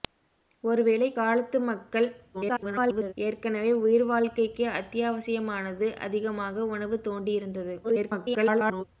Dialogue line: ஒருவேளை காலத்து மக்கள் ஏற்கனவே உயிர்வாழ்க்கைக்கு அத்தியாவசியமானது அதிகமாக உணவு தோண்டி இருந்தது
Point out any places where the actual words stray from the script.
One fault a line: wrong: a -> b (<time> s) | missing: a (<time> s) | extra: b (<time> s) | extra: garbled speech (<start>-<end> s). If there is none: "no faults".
extra: garbled speech (2.3-3.1 s)
extra: garbled speech (7.8-8.8 s)